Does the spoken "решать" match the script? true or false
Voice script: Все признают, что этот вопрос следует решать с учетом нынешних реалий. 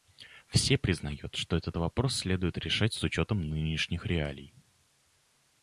true